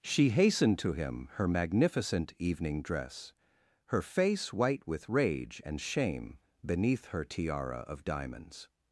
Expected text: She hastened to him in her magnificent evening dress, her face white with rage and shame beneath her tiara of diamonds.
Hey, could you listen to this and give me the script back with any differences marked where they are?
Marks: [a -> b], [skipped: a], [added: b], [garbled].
She hastened to him [skipped: in] her magnificent evening dress, her face white with rage and shame beneath her tiara of diamonds.